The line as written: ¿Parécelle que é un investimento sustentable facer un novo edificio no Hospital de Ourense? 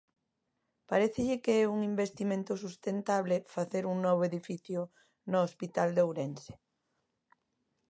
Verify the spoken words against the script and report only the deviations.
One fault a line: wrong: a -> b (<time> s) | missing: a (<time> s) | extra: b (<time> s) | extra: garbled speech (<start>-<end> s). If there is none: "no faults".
no faults